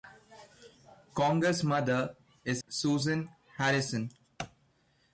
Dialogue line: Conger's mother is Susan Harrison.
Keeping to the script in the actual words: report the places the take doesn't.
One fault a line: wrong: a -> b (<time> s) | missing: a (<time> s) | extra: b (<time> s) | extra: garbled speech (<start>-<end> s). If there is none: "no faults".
no faults